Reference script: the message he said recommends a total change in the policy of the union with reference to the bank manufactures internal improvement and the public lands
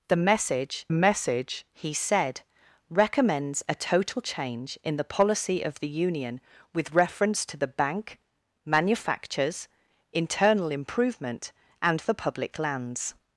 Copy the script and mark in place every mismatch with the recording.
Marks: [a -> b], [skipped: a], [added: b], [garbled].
the message [added: message] he said recommends a total change in the policy of the union with reference to the bank manufactures internal improvement and the public lands